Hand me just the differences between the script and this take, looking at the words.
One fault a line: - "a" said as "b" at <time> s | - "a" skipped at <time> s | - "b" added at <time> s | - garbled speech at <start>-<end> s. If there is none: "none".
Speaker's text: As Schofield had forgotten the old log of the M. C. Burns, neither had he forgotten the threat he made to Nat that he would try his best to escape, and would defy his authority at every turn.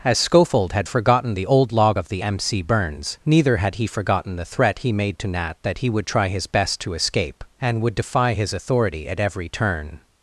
none